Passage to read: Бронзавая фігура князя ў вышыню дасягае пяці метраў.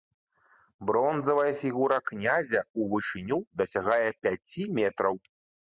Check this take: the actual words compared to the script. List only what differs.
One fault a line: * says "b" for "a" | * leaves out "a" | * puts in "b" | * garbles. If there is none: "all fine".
all fine